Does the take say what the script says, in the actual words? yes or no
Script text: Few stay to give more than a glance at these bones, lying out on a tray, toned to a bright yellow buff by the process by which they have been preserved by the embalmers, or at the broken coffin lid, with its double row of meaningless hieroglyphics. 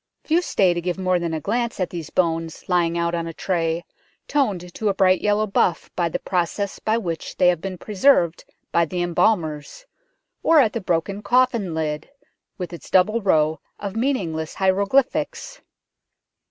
yes